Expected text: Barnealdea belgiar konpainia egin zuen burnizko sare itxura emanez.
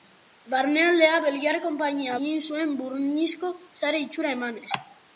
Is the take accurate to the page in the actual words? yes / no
yes